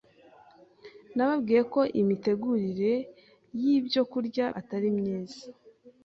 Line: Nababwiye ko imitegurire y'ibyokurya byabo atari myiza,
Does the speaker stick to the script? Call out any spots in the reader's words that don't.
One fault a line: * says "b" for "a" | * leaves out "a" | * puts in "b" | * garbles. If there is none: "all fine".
* leaves out "byabo"